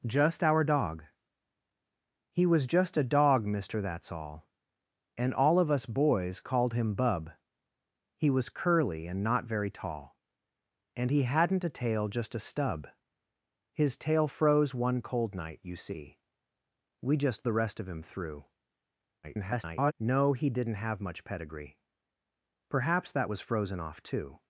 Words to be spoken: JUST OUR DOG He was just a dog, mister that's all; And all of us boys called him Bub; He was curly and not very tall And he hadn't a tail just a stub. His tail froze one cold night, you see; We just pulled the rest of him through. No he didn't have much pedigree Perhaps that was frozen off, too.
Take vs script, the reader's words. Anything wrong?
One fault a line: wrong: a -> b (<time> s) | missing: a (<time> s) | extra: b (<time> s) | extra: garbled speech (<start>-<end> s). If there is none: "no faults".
missing: pulled (17.4 s)
extra: garbled speech (19.2-19.9 s)